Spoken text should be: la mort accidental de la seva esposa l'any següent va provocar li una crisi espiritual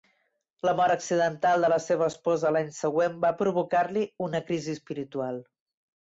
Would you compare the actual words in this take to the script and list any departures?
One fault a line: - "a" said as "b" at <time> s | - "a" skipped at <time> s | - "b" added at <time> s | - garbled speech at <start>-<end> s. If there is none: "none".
none